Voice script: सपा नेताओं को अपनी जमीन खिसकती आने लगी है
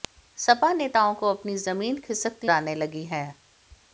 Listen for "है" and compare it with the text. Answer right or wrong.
right